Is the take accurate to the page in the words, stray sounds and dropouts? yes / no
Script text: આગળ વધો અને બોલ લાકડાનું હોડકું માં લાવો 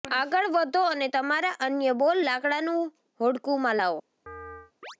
no